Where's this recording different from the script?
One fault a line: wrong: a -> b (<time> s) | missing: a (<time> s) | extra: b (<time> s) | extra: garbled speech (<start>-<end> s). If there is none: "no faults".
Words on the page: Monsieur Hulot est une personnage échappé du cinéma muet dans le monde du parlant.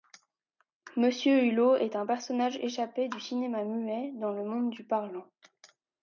wrong: une -> un (1.9 s)